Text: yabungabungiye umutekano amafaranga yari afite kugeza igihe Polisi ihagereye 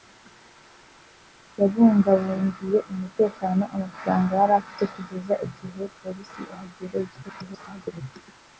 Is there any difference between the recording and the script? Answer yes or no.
yes